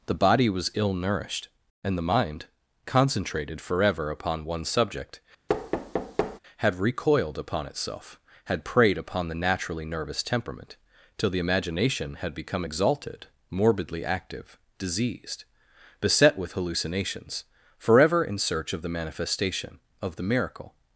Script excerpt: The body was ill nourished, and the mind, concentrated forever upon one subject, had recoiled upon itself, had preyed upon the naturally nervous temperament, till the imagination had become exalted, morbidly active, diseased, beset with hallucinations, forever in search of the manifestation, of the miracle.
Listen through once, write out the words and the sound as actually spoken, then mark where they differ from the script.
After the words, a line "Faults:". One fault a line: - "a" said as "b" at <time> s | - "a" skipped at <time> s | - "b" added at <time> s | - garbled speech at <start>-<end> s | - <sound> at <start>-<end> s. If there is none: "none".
The body was ill nourished, and the mind, concentrated forever upon one subject, had recoiled upon itself, had preyed upon the naturally nervous temperament, till the imagination had become exalted, morbidly active, diseased, beset with hallucinations, forever in search of the manifestation, of the miracle.
Faults:
- thud at 5.5-6.4 s